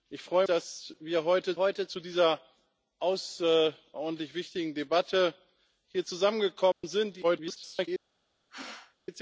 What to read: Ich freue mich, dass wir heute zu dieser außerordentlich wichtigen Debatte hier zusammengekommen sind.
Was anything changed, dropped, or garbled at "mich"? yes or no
yes